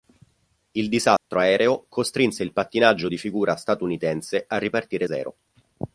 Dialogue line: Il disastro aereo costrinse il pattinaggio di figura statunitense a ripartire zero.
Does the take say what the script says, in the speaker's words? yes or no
yes